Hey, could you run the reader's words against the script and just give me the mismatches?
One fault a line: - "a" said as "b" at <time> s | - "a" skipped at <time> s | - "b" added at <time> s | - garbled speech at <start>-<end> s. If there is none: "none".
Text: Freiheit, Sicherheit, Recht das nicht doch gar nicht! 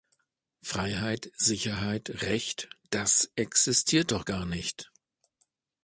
- "nicht" said as "existiert" at 3.4 s